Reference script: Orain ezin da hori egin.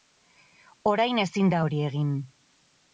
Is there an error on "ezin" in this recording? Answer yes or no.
no